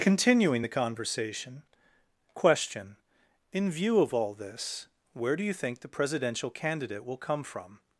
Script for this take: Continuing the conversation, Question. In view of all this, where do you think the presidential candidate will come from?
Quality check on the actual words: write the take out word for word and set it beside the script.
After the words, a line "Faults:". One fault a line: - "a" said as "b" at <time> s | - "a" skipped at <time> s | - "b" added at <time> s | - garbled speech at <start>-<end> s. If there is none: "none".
Continuing the conversation, Question. In view of all this, where do you think the presidential candidate will come from?
Faults:
none